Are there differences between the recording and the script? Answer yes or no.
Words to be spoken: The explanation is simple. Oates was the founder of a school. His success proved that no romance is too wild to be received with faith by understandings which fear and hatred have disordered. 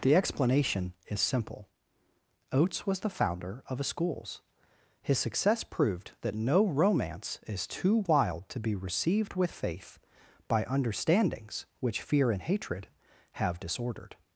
yes